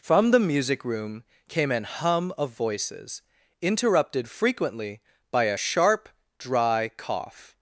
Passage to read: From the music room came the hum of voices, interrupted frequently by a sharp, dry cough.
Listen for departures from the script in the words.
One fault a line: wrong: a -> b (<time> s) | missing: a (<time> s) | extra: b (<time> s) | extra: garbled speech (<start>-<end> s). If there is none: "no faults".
wrong: the -> an (1.7 s)